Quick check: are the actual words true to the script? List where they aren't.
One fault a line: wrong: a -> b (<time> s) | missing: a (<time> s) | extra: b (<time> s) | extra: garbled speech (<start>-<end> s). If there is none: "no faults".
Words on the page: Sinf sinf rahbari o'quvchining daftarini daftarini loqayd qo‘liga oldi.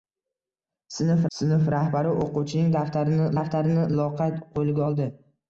no faults